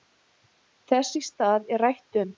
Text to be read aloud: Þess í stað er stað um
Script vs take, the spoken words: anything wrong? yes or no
yes